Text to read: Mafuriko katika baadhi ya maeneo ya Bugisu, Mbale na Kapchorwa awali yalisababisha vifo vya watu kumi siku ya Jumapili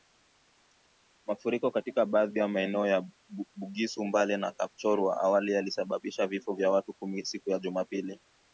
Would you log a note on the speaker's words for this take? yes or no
no